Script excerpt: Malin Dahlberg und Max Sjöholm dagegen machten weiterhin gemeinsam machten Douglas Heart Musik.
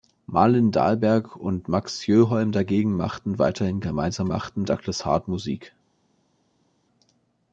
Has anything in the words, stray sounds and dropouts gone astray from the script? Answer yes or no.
no